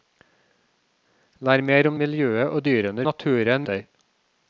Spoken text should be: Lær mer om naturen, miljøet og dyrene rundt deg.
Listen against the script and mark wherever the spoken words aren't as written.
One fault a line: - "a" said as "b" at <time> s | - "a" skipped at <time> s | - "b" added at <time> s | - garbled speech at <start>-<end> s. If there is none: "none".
- "naturen" skipped at 2.0 s
- "rundt" said as "naturen" at 3.1 s